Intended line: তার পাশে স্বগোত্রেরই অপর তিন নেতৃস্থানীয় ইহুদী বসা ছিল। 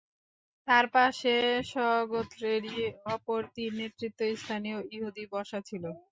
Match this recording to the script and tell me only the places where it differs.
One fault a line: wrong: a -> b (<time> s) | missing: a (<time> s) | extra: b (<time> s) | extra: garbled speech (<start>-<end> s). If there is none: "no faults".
no faults